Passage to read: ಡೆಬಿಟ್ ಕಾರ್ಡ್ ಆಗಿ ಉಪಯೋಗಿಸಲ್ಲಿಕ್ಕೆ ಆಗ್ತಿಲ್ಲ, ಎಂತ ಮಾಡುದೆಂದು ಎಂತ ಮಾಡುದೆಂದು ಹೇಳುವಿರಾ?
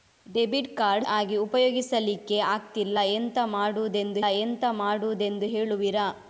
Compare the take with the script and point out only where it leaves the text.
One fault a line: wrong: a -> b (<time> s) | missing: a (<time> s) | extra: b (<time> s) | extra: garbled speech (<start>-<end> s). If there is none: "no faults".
no faults